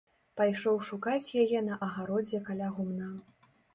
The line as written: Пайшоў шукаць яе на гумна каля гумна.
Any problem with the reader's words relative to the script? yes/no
yes